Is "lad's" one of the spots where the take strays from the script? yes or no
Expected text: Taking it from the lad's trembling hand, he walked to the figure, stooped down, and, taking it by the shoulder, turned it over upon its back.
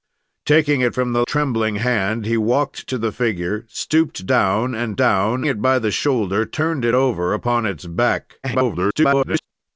yes